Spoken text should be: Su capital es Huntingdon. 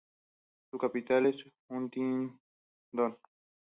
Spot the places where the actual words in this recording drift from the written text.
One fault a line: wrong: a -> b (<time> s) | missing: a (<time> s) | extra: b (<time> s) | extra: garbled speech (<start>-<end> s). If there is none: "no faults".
no faults